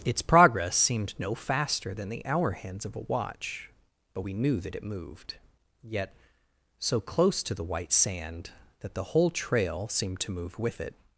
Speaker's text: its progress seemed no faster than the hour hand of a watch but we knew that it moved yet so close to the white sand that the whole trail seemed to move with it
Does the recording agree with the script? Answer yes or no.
no